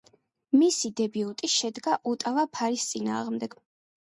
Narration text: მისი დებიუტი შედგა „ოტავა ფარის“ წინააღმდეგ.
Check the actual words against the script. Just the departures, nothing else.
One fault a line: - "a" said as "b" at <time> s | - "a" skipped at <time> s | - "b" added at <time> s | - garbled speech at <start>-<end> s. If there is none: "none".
none